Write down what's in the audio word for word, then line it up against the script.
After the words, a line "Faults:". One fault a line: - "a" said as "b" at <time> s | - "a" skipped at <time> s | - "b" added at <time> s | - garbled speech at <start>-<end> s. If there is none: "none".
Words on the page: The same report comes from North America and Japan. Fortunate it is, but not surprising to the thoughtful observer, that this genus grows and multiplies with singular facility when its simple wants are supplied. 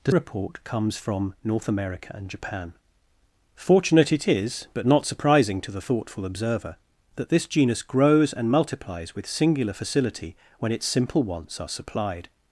The report comes from North America and Japan. Fortunate it is, but not surprising to the thoughtful observer, that this genus grows and multiplies with singular facility when its simple wants are supplied.
Faults:
- "same" skipped at 0.1 s